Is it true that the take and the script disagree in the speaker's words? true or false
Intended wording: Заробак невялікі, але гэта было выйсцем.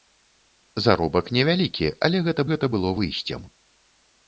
true